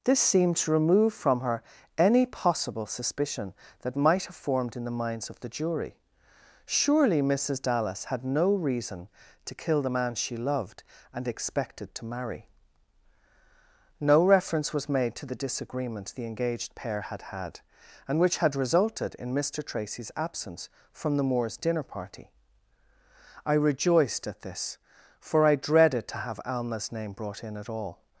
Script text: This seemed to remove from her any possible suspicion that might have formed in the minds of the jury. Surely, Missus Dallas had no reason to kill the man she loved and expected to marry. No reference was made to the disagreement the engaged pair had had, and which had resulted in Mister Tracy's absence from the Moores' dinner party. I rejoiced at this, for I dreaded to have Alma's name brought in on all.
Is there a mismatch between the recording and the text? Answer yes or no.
yes